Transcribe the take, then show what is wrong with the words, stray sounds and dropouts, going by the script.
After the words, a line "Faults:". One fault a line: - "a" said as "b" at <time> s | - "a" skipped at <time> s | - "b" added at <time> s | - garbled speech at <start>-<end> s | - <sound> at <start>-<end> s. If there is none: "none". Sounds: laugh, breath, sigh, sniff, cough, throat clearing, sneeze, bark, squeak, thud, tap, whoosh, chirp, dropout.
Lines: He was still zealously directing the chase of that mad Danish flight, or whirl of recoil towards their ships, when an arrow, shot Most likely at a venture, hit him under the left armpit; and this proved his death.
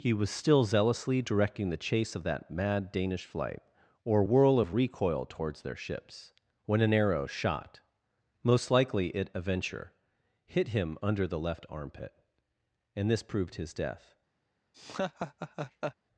He was still zealously directing the chase of that mad Danish flight, or whirl of recoil towards their ships, when an arrow, shot Most likely it a venture, hit him under the left armpit; and this proved his death.
Faults:
- "at" said as "it" at 9.1 s
- laugh at 14.7-16.0 s